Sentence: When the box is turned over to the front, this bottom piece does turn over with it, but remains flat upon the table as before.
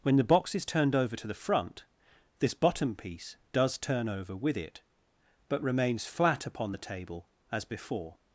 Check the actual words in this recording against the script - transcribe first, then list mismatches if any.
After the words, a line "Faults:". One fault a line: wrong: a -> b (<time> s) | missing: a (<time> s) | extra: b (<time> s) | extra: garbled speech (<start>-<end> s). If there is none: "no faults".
When the box is turned over to the front, this bottom piece does turn over with it, but remains flat upon the table as before.
Faults:
no faults